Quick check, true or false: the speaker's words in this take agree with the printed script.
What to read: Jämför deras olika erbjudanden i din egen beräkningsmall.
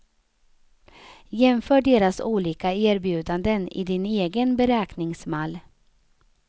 true